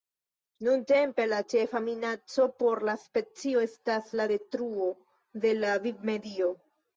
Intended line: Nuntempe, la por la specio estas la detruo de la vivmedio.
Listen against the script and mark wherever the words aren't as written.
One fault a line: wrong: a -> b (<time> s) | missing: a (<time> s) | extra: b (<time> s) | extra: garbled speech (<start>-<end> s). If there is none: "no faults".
extra: ĉefa minaco (1.5 s)